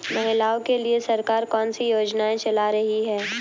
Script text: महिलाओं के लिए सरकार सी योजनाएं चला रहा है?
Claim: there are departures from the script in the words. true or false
true